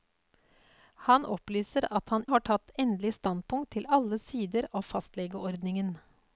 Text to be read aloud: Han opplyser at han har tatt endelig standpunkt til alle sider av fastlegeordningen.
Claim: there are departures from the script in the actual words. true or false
false